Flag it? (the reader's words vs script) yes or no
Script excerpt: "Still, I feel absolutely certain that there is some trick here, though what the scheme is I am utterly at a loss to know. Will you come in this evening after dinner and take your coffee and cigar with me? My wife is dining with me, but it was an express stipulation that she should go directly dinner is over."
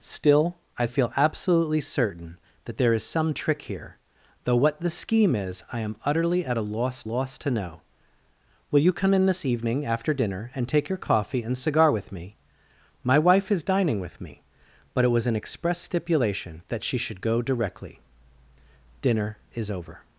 yes